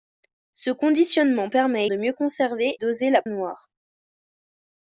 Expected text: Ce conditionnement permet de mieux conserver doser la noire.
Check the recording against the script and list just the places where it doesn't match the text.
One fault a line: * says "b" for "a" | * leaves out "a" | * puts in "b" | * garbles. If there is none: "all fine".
all fine